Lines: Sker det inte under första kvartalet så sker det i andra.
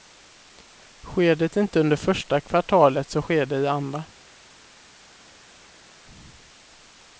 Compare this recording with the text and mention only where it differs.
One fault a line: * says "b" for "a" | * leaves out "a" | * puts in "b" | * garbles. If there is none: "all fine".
all fine